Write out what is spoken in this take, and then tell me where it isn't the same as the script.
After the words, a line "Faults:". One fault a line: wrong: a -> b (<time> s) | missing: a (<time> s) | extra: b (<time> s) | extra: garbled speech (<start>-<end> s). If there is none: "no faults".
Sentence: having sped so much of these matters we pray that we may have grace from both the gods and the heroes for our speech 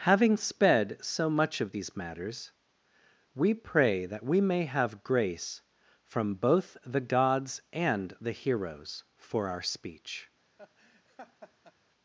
having sped so much of these matters we pray that we may have grace from both the gods and the heroes for our speech
Faults:
no faults